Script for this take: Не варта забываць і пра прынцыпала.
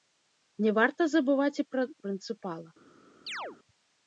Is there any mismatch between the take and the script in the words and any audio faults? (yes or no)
yes